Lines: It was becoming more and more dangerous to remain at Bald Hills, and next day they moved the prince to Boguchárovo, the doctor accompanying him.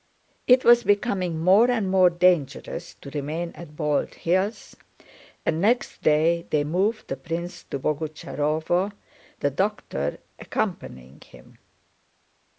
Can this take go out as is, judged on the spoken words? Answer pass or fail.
pass